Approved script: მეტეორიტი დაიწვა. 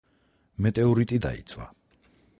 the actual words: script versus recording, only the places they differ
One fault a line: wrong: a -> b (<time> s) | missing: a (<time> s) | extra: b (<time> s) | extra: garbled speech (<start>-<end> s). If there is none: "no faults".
no faults